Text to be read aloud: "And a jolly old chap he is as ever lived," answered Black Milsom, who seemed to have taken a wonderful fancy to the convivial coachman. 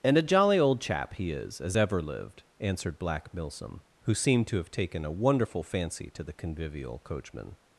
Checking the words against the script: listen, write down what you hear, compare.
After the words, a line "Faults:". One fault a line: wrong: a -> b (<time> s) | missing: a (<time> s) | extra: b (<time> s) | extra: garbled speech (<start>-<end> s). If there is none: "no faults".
"And a jolly old chap he is as ever lived," answered Black Milsom, who seemed to have taken a wonderful fancy to the convivial coachman.
Faults:
no faults